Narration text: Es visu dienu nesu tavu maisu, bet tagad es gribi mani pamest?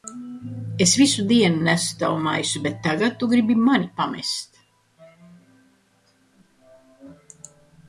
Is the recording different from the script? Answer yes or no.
yes